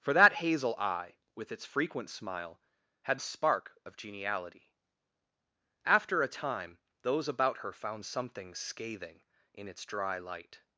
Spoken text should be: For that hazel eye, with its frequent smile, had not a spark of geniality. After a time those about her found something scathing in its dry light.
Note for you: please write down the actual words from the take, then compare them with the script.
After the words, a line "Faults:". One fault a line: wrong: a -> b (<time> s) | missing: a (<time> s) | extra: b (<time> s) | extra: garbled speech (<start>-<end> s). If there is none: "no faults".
For that hazel eye, with its frequent smile, had a spark of geniality. After a time those about her found something scathing in its dry light.
Faults:
missing: not (3.2 s)